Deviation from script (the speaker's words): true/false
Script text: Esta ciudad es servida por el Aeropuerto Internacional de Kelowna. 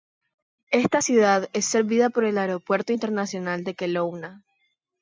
false